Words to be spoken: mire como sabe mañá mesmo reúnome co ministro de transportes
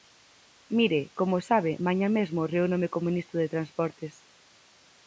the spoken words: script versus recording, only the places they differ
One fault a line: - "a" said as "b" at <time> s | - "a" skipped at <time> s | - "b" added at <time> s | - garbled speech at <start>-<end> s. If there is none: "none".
none